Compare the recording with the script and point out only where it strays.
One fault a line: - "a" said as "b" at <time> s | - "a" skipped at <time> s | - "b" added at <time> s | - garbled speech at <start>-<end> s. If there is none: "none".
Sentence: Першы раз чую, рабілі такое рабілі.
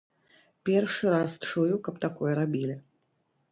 - "рабілі" said as "каб" at 1.9 s